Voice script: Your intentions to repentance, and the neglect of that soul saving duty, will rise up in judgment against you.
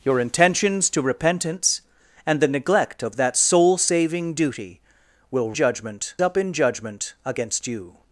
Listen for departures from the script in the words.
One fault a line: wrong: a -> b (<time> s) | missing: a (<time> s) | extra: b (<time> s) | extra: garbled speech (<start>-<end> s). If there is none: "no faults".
wrong: rise -> judgment (5.5 s)